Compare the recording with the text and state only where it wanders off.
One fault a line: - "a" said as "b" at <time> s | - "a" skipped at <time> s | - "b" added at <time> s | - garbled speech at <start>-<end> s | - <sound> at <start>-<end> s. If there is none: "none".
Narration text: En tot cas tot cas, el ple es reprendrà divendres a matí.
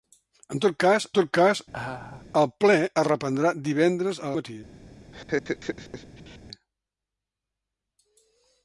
- laugh at 1.7-2.3 s
- laugh at 5.1-6.4 s